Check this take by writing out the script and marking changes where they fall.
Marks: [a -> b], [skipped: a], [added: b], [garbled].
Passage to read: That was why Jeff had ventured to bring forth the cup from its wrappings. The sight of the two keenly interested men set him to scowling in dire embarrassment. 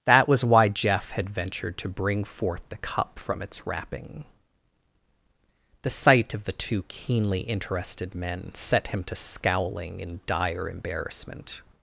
That was why Jeff had ventured to bring forth the cup from its [wrappings. -> wrapping] The sight of the two keenly interested men set him to scowling in dire embarrassment.